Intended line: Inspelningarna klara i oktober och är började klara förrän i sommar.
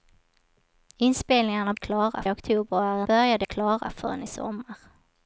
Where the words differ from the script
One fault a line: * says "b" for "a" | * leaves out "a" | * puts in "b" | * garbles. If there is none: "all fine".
all fine